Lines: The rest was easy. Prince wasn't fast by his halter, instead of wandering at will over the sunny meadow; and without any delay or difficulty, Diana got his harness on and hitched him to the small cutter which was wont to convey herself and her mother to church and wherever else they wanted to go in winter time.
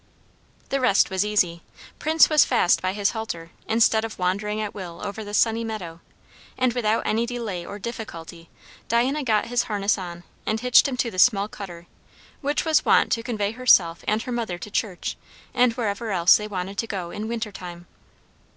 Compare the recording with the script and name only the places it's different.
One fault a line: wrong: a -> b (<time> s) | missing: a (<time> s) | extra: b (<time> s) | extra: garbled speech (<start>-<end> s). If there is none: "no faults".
wrong: wasn't -> was (2.3 s)